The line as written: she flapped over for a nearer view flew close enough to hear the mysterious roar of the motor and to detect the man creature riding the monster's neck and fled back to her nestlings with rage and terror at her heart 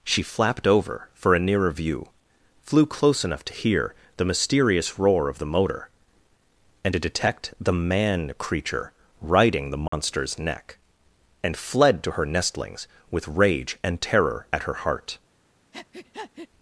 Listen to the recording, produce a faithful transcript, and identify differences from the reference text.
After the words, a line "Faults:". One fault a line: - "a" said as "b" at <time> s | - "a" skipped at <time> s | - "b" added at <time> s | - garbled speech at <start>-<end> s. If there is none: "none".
she flapped over for a nearer view flew close enough to hear the mysterious roar of the motor and to detect the man creature riding the monster's neck and fled to her nestlings with rage and terror at her heart
Faults:
- "back" skipped at 12.0 s